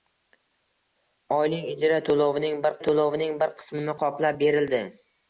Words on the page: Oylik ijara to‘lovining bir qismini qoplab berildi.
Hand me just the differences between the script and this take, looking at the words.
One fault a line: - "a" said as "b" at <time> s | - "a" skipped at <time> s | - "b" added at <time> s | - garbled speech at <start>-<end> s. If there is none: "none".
- "to‘lovining bir" added at 2.9 s